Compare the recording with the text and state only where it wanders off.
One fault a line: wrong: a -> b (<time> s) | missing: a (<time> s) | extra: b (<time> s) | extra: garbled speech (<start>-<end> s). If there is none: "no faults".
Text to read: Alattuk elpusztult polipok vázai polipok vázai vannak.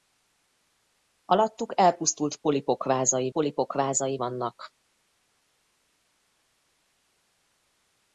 no faults